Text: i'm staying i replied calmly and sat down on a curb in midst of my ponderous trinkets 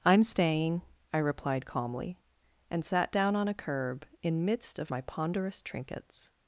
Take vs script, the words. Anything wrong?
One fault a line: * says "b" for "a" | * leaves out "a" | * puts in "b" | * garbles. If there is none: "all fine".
all fine